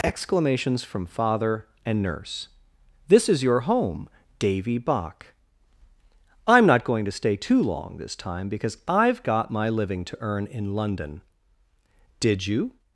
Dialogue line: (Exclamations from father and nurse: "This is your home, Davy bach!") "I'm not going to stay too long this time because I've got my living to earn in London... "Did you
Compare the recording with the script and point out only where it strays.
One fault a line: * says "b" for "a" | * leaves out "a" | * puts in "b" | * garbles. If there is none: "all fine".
all fine